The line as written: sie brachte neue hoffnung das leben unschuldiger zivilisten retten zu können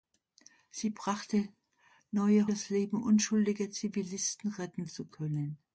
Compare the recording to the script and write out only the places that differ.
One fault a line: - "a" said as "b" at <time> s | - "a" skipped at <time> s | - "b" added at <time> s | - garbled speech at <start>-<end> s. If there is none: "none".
- "hoffnung" skipped at 2.5 s